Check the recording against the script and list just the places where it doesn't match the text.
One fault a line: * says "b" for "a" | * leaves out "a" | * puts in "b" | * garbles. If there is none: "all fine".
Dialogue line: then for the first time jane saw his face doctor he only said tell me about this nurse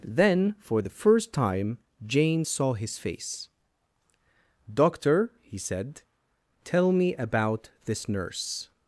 * leaves out "only"